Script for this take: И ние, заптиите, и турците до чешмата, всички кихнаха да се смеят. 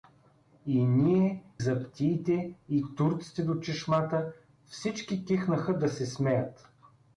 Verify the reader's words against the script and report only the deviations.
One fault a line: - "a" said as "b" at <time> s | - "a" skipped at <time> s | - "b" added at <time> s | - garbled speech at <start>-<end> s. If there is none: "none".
none